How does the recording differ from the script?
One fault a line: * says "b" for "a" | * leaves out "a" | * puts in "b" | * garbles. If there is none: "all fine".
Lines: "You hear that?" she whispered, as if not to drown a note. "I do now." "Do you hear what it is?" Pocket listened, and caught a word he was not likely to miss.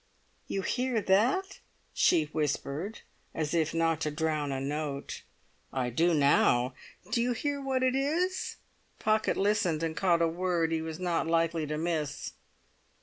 all fine